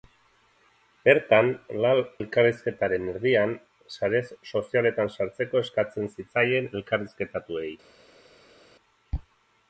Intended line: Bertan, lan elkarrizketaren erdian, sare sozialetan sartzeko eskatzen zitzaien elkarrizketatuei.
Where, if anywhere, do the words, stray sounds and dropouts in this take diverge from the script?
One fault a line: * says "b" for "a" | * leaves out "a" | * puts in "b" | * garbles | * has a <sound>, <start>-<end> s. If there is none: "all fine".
* leaves out "lan"